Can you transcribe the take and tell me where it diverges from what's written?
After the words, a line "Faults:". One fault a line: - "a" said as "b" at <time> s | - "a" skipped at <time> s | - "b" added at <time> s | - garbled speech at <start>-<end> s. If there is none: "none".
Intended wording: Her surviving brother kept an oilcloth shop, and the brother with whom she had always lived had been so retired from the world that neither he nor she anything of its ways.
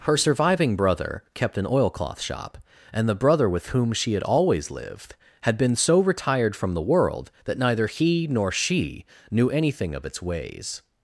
Her surviving brother kept an oilcloth shop, and the brother with whom she had always lived had been so retired from the world that neither he nor she knew anything of its ways.
Faults:
- "knew" added at 9.3 s